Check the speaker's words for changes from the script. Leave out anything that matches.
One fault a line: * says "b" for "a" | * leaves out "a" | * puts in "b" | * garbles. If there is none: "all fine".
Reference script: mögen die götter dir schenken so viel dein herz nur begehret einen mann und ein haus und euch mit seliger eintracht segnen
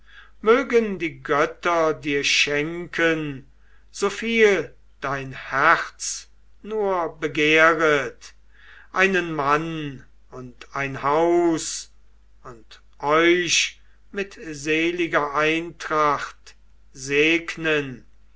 all fine